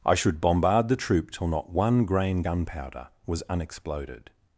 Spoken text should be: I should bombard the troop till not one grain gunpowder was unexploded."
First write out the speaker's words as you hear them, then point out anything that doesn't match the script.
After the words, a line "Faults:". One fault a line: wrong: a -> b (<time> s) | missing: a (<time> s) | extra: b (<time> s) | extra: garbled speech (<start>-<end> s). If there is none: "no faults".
I should bombard the troop till not one grain gunpowder was unexploded."
Faults:
no faults